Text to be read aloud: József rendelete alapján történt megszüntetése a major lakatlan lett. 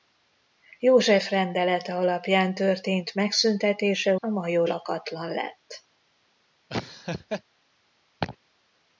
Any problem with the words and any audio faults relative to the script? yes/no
yes